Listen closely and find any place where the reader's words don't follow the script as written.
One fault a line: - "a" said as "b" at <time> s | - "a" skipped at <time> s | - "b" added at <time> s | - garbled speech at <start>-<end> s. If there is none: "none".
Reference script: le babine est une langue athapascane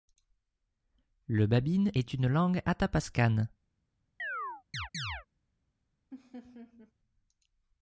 none